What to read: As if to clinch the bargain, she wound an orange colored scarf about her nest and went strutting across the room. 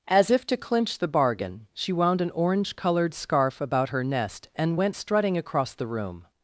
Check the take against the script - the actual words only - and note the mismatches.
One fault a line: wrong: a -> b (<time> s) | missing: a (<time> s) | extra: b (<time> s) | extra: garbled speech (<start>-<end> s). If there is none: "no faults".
no faults